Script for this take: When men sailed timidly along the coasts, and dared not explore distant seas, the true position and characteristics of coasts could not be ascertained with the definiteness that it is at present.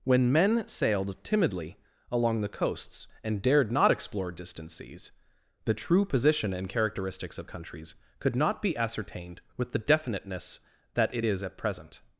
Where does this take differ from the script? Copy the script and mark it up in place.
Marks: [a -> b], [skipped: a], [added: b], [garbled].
When men sailed timidly along the coasts, and dared not explore distant seas, the true position and characteristics of [coasts -> countries] could not be ascertained with the definiteness that it is at present.